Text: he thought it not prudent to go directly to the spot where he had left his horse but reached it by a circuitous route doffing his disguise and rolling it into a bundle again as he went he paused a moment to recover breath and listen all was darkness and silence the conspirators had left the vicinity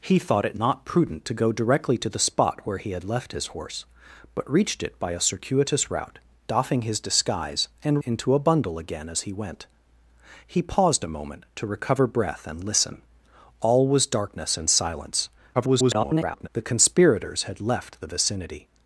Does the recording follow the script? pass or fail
fail